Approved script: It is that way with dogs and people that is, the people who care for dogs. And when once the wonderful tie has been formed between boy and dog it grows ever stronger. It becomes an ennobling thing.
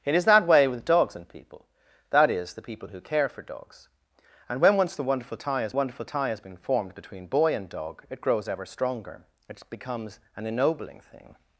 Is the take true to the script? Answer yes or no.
no